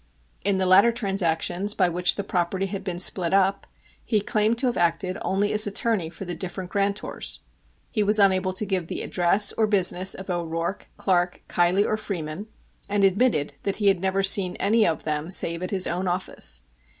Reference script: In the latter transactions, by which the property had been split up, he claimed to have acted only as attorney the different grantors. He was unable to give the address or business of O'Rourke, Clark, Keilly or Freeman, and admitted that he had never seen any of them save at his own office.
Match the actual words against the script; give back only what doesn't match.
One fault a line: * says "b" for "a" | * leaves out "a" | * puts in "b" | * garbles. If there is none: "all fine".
* puts in "for"